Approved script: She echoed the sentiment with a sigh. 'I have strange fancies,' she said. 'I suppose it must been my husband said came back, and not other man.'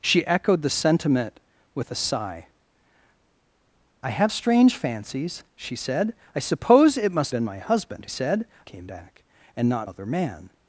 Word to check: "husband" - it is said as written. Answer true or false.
true